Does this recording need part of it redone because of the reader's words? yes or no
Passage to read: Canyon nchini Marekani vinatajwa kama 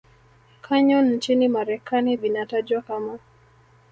no